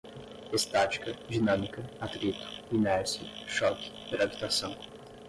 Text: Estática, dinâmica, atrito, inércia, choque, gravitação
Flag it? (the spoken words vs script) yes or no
no